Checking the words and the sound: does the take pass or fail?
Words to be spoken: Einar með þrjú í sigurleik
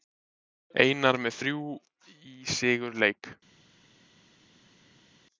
pass